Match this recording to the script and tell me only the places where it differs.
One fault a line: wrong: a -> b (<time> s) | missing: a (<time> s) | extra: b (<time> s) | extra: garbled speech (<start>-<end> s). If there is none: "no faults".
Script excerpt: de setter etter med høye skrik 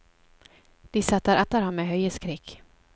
extra: ham (1.6 s)